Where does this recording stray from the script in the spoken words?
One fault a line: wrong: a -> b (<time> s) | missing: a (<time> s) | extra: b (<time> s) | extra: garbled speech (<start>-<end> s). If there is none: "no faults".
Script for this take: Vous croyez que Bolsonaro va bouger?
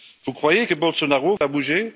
no faults